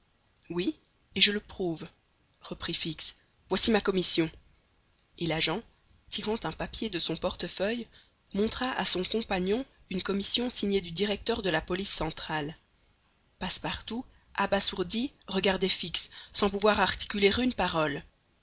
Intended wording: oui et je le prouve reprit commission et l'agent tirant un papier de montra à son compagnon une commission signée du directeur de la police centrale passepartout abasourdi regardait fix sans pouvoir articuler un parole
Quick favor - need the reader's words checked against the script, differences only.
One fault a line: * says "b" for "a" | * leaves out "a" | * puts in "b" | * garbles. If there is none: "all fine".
* puts in "fix voici ma"
* puts in "son portefeuille"
* says "une" for "un"